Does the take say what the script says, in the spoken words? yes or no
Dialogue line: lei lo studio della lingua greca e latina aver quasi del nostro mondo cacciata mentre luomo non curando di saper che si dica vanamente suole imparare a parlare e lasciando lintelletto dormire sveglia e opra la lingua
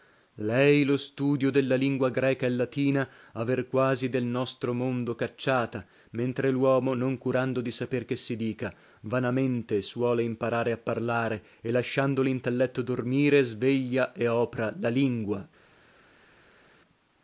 yes